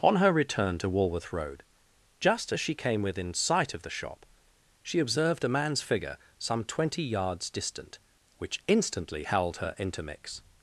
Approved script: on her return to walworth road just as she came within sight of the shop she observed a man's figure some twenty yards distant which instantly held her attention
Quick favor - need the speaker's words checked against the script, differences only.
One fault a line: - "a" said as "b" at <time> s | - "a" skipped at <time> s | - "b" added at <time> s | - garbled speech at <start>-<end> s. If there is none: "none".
- "attention" said as "intermix" at 9.8 s